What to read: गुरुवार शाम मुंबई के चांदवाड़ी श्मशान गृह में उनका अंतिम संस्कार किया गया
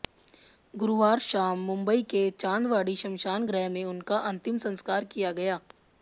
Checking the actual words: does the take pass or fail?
pass